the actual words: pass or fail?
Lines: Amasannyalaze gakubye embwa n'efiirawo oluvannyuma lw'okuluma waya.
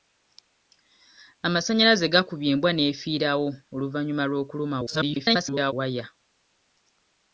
fail